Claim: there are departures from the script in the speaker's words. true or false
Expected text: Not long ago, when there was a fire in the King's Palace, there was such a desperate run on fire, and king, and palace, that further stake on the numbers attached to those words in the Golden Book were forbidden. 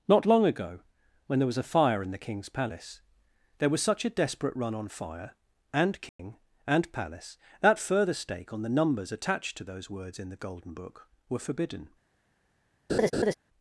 false